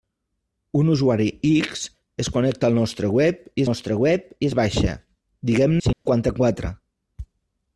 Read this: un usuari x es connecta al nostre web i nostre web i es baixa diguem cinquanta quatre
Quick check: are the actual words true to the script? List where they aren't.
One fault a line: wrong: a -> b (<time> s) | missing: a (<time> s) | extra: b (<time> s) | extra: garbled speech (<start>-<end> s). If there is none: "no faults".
no faults